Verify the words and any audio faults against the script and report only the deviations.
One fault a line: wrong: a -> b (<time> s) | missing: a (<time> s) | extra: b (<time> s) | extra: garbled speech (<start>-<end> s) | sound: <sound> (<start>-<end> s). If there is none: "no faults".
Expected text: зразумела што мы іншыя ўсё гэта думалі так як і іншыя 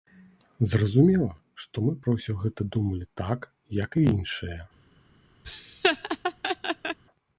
wrong: іншыя -> пра (2.1 s)
sound: laugh (5.4-7.0 s)